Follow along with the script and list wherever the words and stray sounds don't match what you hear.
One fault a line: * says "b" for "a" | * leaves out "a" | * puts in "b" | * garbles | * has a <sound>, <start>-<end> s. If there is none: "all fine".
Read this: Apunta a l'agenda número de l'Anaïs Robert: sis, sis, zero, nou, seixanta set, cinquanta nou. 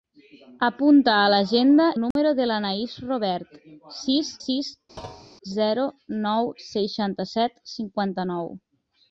* has a dropout, 2.1-2.2 s
* has a thud, 5.0-5.3 s